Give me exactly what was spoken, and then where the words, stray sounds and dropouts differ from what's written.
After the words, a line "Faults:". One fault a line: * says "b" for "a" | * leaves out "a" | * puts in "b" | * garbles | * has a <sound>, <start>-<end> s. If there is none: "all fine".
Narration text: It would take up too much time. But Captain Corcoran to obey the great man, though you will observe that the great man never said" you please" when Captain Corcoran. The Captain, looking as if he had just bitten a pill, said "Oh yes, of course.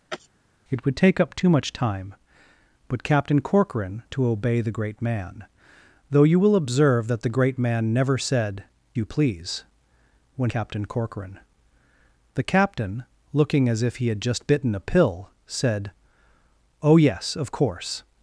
It would take up too much time. But Captain Corcoran to obey the great man, though you will observe that the great man never said" you please" when Captain Corcoran. The Captain, looking as if he had just bitten a pill, said "Oh yes, of course.
Faults:
* has a sneeze, 0.1-0.3 s